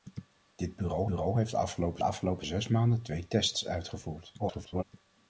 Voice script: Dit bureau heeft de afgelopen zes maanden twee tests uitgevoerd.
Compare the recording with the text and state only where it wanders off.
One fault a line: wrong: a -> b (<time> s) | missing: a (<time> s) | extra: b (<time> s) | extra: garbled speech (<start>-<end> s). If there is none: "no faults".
extra: bureau (1.0 s)
extra: afgelopen (2.0 s)
extra: garbled speech (4.4-4.8 s)